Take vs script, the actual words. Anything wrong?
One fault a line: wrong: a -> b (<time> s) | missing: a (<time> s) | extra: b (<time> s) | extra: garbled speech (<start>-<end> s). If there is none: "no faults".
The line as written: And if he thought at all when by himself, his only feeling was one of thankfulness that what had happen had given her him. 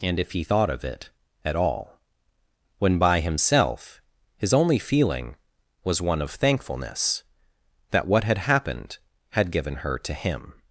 extra: of it (0.7 s)
wrong: happen -> happened (8.4 s)
extra: to (10.0 s)